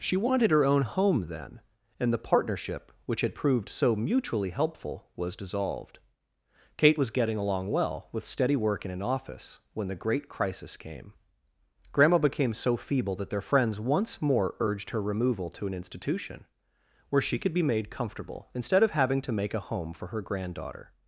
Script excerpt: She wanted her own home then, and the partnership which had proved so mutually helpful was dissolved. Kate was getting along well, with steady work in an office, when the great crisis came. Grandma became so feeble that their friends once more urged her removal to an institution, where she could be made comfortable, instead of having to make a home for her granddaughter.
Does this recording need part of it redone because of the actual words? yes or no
no